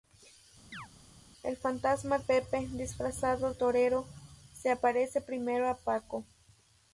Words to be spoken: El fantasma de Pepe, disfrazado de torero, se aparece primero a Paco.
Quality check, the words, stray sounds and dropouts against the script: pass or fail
fail